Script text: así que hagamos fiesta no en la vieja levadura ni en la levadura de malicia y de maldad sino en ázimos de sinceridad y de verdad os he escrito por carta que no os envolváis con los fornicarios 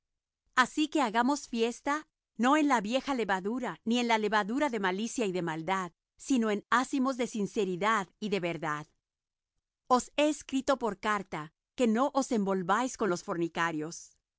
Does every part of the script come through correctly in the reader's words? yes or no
yes